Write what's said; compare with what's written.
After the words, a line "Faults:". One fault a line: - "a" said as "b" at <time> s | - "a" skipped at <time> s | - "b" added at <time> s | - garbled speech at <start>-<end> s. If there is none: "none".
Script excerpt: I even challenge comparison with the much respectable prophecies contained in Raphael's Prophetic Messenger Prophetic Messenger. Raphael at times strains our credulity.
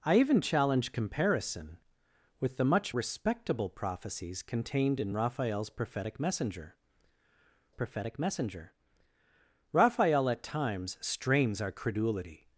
I even challenge comparison with the much respectable prophecies contained in Raphael's Prophetic Messenger Prophetic Messenger. Raphael at times strains our credulity.
Faults:
none